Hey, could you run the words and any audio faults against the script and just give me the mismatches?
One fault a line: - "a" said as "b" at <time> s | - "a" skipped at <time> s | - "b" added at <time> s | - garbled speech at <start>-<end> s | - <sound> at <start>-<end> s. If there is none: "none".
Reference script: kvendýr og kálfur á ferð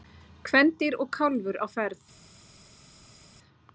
none